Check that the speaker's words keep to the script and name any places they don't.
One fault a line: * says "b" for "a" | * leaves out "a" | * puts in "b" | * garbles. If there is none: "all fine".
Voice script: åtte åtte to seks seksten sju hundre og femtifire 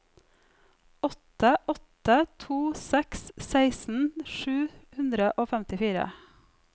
all fine